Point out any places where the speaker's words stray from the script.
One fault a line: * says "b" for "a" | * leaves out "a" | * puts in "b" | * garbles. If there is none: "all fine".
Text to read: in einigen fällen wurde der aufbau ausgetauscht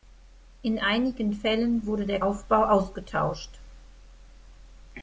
all fine